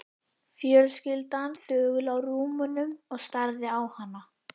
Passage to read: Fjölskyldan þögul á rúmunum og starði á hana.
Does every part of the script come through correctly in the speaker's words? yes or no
yes